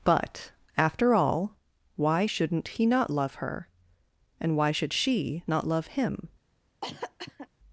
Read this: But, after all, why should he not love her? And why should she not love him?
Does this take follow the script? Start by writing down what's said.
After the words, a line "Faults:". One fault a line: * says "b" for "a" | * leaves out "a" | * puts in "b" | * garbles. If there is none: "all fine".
But, after all, why shouldn't he not love her? And why should she not love him?
Faults:
* says "shouldn't" for "should"